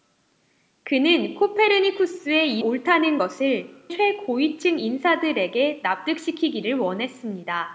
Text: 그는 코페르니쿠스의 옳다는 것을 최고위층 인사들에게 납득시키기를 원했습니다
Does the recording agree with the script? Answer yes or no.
yes